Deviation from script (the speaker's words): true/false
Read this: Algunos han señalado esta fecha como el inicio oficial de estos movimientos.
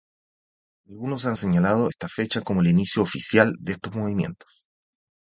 false